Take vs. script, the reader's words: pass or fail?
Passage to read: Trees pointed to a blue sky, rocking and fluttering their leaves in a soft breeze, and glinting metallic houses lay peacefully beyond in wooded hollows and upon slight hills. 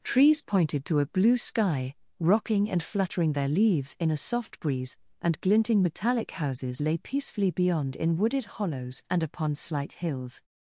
pass